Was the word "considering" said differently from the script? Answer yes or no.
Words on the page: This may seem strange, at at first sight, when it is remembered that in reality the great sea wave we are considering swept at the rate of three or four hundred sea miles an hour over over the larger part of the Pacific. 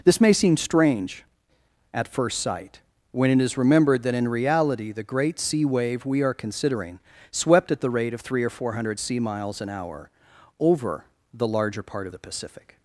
no